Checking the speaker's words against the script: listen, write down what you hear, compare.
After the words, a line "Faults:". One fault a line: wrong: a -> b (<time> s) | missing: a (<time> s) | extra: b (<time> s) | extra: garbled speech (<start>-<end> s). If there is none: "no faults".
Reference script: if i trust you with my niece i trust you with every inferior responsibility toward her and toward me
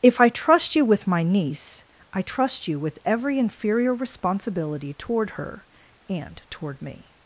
if i trust you with my niece i trust you with every inferior responsibility toward her and toward me
Faults:
no faults